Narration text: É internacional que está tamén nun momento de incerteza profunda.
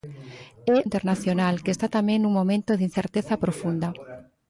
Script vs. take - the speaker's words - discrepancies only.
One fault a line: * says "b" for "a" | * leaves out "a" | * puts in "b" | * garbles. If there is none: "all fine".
all fine